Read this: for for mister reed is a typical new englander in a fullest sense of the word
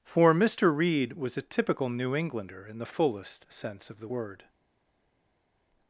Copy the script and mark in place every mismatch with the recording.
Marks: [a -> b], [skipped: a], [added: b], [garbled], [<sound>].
for [skipped: for] mister reed [is -> was] a typical new englander in [a -> the] fullest sense of the word